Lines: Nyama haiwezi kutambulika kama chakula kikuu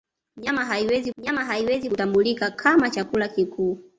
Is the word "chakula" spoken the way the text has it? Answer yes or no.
yes